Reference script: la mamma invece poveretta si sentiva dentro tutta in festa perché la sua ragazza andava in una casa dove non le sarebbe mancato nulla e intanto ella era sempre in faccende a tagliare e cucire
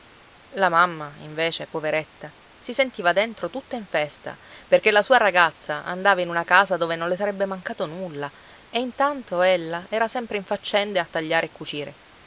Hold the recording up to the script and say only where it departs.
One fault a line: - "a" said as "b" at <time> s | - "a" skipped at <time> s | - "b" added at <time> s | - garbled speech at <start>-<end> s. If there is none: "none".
none